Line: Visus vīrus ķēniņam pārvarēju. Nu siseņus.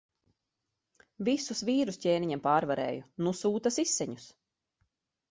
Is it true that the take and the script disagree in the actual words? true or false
true